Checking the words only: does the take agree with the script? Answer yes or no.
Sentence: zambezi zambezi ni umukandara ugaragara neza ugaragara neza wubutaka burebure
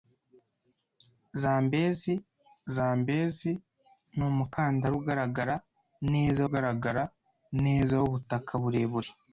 yes